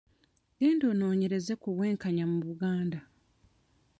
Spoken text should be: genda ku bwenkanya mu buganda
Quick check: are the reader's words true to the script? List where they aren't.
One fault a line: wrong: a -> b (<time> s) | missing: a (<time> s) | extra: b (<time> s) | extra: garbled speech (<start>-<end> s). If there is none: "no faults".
extra: onoonyereze (0.9 s)